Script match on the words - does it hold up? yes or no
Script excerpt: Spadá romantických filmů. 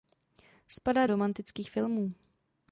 yes